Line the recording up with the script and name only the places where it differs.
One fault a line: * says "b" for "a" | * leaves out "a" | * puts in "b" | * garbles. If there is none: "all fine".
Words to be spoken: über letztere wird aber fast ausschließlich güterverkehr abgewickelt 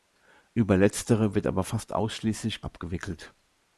* leaves out "güterverkehr"